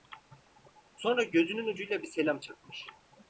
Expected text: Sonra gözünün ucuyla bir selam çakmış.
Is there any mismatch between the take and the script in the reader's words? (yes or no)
no